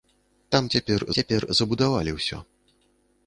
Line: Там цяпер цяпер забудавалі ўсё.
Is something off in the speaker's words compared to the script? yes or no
no